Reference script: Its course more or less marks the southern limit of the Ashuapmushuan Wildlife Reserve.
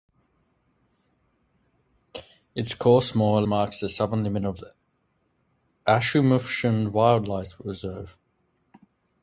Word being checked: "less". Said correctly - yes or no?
no